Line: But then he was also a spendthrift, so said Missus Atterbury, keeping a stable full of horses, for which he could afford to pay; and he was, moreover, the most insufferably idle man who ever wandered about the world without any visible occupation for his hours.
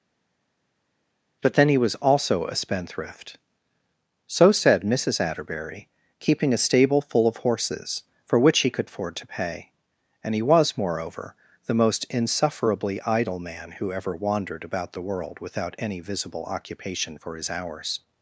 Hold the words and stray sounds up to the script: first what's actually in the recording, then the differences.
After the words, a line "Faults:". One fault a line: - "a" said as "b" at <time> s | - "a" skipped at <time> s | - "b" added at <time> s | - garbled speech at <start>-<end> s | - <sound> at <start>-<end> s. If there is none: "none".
But then he was also a spendthrift, so said Missus Atterbury, keeping a stable full of horses, for which he could afford to pay; and he was, moreover, the most insufferably idle man who ever wandered about the world without any visible occupation for his hours.
Faults:
none